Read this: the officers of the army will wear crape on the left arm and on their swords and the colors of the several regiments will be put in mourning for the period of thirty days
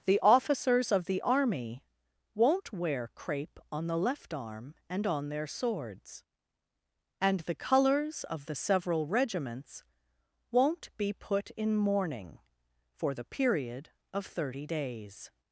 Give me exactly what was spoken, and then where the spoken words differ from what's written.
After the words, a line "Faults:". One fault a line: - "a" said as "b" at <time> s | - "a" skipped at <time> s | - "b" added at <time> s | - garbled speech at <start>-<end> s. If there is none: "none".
the officers of the army won't wear crape on the left arm and on their swords and the colors of the several regiments won't be put in mourning for the period of thirty days
Faults:
- "will" said as "won't" at 2.3 s
- "will" said as "won't" at 10.5 s